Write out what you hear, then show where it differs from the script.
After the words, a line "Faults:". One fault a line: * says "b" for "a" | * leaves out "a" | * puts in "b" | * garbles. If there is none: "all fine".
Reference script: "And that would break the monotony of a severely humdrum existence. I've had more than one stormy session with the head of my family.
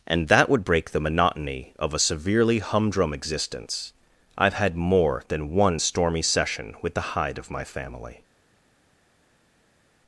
"And that would break the monotony of a severely humdrum existence. I've had more than one stormy session with the hide of my family.
Faults:
* says "hide" for "head"